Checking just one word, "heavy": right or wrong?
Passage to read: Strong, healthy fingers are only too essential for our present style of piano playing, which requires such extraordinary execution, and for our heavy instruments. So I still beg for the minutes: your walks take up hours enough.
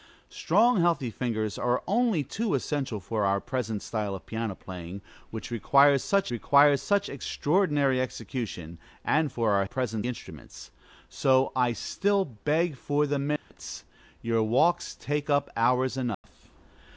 wrong